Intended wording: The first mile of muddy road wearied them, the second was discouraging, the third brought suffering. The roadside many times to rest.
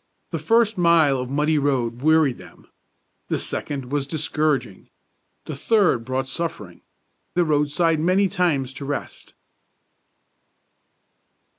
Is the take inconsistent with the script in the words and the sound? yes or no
no